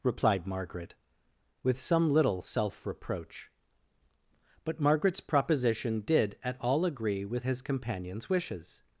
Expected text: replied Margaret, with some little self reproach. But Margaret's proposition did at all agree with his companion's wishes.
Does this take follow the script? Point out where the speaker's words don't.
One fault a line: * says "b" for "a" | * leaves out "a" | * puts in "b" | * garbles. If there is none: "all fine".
all fine